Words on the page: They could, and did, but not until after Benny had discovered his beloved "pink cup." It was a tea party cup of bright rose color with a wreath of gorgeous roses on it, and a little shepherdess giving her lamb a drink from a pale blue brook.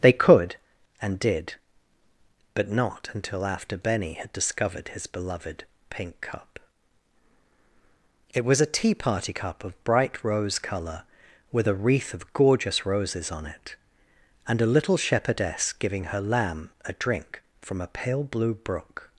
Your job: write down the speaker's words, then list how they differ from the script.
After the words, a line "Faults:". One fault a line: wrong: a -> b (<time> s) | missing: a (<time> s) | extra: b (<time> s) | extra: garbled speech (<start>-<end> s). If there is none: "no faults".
They could, and did, but not until after Benny had discovered his beloved "pink cup." It was a tea party cup of bright rose color with a wreath of gorgeous roses on it, and a little shepherdess giving her lamb a drink from a pale blue brook.
Faults:
no faults